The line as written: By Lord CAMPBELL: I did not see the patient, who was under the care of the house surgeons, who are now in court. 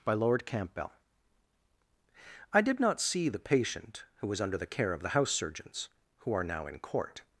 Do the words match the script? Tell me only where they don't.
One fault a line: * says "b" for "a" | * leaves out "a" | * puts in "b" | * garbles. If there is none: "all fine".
all fine